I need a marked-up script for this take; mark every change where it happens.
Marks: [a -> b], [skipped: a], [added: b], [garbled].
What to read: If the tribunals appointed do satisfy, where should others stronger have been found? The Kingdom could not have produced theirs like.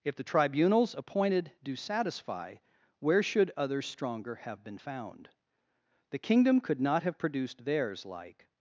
If the tribunals appointed do satisfy, where should others stronger have been found? The Kingdom could not have produced theirs like.